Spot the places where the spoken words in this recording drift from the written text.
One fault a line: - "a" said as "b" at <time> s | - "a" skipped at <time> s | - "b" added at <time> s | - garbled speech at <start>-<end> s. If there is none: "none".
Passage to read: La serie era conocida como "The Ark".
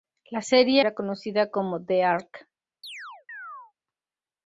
none